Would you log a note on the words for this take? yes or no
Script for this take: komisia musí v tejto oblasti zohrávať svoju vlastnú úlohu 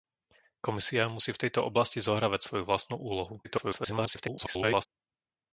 yes